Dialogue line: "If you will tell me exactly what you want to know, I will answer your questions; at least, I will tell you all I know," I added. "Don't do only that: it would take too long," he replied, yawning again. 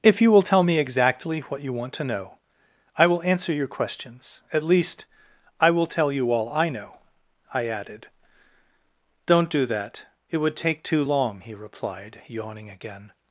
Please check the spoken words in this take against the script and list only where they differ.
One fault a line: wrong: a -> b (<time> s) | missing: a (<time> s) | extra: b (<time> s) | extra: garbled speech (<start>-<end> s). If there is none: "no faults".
missing: only (9.7 s)